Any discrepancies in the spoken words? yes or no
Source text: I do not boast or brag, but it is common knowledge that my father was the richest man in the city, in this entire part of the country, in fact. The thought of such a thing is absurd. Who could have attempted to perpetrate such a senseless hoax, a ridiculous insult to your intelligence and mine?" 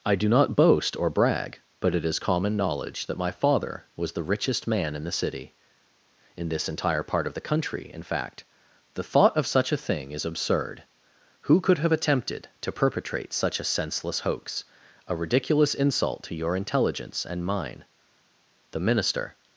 yes